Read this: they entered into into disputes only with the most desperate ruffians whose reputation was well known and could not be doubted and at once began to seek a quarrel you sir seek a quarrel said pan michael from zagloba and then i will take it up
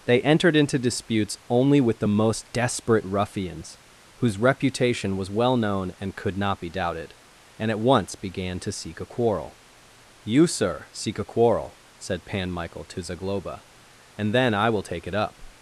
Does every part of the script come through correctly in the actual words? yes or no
no